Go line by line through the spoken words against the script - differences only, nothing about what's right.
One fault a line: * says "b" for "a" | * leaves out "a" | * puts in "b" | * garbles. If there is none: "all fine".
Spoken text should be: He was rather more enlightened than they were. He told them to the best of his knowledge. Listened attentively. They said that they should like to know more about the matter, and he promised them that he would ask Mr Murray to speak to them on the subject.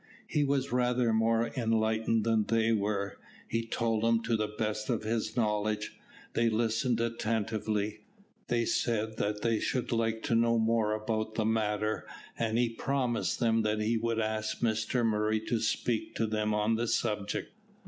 * puts in "They"